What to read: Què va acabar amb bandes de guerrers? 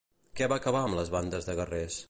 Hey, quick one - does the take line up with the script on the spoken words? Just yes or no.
no